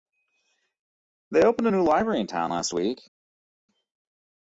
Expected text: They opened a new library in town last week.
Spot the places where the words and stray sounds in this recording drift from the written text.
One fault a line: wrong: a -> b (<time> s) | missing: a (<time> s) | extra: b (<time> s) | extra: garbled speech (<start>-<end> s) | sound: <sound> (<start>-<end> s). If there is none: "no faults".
no faults